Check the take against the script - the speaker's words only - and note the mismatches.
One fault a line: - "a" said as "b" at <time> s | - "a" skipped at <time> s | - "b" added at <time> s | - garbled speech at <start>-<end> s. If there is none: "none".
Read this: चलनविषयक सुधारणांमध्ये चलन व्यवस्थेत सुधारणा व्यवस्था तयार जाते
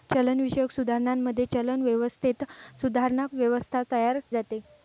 none